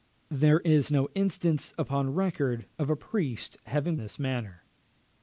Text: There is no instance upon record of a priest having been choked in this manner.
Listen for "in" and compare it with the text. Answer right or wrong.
wrong